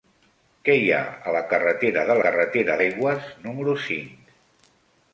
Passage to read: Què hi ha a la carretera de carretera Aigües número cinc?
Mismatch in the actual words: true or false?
false